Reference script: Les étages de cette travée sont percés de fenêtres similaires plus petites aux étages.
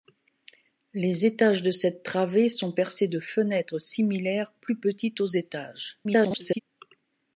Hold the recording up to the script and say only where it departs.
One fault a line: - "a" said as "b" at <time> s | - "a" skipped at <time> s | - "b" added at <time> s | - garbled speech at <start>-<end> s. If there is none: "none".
- garbled speech at 6.0-6.6 s